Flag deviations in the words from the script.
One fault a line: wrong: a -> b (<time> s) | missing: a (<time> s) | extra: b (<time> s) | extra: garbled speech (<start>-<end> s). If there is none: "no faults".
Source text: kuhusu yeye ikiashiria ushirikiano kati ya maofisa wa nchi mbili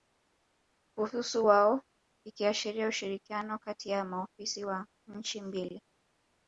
wrong: yeye -> wao (1.5 s)